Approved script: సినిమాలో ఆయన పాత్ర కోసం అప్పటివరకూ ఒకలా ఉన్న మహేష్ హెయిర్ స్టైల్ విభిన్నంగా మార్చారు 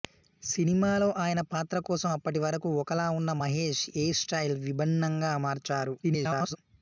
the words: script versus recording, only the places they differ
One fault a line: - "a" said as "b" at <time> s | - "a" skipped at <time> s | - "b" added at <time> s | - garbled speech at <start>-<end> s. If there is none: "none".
- garbled speech at 6.0-6.6 s